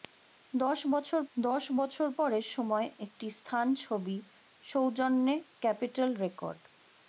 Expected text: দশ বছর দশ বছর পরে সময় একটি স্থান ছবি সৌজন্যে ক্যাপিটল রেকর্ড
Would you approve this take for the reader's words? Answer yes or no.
yes